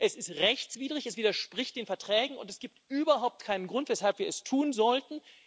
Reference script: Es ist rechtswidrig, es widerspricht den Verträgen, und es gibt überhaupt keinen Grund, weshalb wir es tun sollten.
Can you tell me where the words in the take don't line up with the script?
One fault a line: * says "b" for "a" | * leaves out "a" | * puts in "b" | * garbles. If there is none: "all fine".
all fine